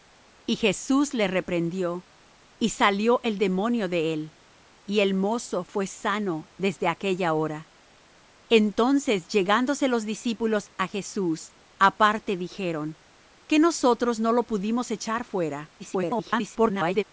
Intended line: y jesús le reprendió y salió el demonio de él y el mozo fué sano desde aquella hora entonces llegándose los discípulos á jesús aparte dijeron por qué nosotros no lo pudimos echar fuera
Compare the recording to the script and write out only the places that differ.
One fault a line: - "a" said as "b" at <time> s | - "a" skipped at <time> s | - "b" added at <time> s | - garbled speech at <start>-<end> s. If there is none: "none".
- "por" skipped at 13.0 s
- garbled speech at 15.8-17.0 s